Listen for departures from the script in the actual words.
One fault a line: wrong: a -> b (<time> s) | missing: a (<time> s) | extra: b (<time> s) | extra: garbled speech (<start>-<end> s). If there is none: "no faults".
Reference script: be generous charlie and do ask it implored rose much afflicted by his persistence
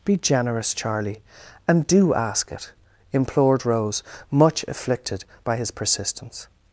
no faults